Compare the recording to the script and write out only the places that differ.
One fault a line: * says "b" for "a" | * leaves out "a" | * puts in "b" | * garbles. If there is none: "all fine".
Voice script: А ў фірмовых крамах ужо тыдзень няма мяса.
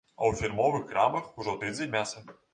* leaves out "няма"